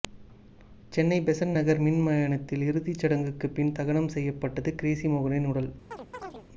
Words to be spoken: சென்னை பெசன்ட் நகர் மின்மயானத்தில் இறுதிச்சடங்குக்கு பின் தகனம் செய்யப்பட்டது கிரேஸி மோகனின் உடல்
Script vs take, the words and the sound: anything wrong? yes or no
yes